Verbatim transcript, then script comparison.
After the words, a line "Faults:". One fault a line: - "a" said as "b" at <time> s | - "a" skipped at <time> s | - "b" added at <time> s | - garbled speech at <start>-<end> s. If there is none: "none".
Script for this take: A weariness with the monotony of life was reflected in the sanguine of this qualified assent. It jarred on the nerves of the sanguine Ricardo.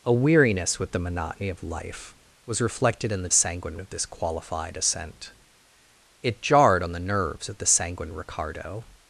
A weariness with the monotony of life was reflected in the sanguine of this qualified assent. It jarred on the nerves of the sanguine Ricardo.
Faults:
none